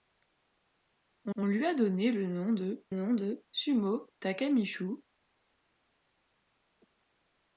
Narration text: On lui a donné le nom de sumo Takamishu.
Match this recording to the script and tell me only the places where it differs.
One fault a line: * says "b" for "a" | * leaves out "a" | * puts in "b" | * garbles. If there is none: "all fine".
* puts in "on"
* puts in "nom de"